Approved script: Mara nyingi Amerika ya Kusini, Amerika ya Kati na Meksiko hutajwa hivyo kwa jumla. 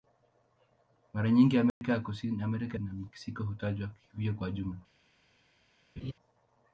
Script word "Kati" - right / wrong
wrong